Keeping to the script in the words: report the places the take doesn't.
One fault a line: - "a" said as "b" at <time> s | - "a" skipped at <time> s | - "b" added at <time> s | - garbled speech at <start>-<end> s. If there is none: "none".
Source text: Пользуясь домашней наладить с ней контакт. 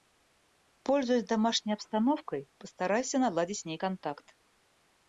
- "обстановкой постарайся" added at 1.7 s